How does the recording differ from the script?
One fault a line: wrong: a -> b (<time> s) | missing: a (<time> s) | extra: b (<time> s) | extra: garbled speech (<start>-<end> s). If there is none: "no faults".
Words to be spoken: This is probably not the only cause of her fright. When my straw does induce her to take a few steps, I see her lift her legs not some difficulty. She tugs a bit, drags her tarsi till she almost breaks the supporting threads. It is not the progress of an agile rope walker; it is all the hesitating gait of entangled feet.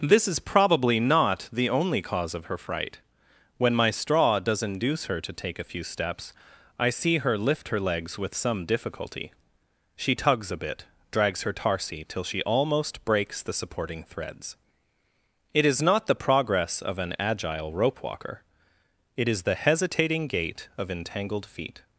wrong: not -> with (8.2 s)
missing: all (19.4 s)